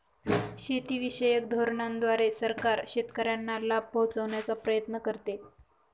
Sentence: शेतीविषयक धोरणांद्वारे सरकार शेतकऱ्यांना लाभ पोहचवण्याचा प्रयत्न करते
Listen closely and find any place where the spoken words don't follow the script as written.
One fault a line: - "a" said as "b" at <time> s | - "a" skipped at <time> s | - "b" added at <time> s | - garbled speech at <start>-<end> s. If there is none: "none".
none